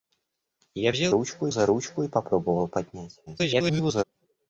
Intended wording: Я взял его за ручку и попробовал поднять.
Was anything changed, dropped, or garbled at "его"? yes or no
yes